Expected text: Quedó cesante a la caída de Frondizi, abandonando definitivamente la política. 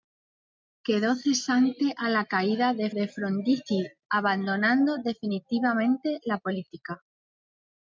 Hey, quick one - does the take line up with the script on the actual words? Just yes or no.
no